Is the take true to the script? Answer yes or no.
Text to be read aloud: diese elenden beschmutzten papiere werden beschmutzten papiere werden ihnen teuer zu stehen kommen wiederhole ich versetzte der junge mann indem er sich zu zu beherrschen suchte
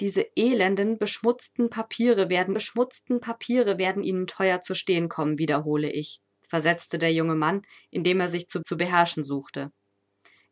yes